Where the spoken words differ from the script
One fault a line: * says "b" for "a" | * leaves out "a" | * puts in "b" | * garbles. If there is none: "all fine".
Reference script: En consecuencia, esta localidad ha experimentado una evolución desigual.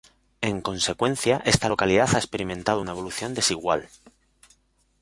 all fine